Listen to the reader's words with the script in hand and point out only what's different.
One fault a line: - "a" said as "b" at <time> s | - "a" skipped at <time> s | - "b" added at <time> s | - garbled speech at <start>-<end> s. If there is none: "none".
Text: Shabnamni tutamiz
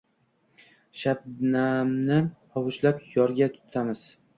- "hovuchlab yorga" added at 2.6 s